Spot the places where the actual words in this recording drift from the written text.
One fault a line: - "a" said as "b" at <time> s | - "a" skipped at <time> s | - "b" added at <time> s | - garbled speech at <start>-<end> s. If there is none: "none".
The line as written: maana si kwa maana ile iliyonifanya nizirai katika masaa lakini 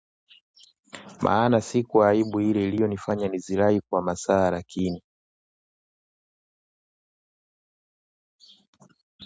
- "maana" said as "aibu" at 2.1 s
- "katika" said as "kwa" at 3.8 s